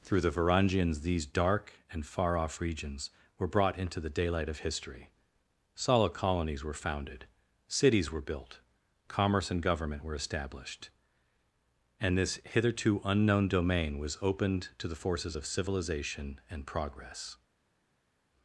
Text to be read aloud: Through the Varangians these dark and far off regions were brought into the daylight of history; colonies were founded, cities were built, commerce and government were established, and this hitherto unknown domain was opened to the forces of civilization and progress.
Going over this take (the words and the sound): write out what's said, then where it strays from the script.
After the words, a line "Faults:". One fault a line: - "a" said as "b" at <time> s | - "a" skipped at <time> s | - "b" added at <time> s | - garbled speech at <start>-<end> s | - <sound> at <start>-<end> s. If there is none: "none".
Through the Varangians these dark and far off regions were brought into the daylight of history; solid colonies were founded, cities were built, commerce and government were established, and this hitherto unknown domain was opened to the forces of civilization and progress.
Faults:
- "solid" added at 5.8 s